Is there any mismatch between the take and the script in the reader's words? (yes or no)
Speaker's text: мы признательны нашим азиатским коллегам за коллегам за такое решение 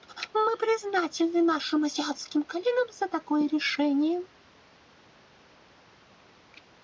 yes